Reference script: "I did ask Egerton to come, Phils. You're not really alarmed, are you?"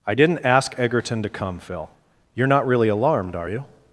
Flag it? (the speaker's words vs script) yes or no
yes